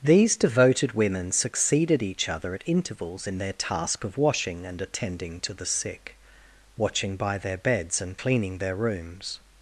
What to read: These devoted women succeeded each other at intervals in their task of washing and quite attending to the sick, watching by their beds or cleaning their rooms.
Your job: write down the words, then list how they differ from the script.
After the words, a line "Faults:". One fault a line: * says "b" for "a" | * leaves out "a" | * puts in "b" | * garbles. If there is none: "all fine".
These devoted women succeeded each other at intervals in their task of washing and attending to the sick, watching by their beds and cleaning their rooms.
Faults:
* leaves out "quite"
* says "and" for "or"